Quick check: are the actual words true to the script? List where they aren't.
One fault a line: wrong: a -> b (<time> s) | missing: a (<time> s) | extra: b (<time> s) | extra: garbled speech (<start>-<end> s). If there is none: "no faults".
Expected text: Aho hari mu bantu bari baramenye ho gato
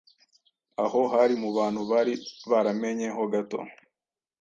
no faults